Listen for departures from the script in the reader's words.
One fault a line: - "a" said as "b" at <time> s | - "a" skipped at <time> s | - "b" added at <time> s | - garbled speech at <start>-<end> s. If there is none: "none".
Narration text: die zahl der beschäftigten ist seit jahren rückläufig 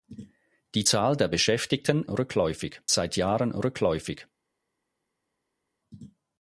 - "ist" said as "rückläufig" at 2.1 s